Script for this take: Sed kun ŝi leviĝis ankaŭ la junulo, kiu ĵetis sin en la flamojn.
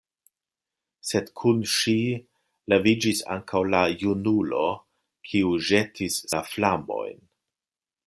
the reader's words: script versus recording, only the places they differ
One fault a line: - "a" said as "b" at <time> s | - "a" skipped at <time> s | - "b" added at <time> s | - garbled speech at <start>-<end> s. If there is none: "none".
- "sin en" skipped at 6.2 s